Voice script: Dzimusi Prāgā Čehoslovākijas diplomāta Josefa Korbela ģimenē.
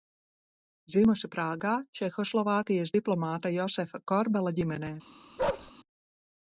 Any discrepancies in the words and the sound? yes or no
yes